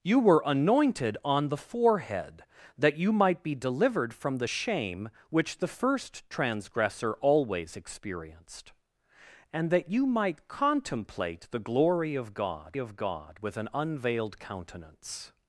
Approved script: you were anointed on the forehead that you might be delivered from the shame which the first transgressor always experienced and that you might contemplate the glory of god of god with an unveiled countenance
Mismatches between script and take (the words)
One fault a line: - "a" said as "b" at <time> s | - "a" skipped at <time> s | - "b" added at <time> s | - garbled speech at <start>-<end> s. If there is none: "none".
none